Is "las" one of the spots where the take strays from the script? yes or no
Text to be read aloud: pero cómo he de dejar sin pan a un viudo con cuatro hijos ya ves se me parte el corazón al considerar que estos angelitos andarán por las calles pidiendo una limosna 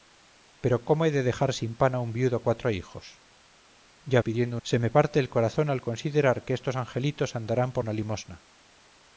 yes